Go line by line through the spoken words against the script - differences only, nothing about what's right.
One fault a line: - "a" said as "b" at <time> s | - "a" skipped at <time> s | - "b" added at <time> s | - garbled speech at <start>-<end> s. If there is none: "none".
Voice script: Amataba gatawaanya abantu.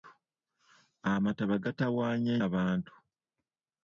none